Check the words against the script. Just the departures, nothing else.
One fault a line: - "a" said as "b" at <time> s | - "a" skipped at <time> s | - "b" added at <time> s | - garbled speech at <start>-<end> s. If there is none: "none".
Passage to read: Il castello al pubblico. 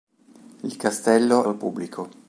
none